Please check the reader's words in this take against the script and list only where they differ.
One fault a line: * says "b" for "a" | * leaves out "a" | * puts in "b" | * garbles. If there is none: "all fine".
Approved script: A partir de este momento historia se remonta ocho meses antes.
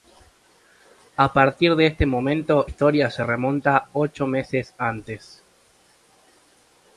all fine